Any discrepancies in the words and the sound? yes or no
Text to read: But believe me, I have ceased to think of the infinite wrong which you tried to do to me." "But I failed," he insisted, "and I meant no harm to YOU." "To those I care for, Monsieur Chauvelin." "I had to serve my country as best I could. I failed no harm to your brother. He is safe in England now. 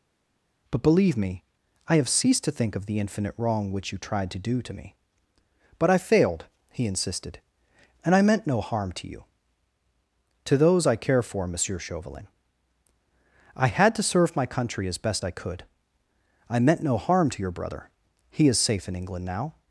yes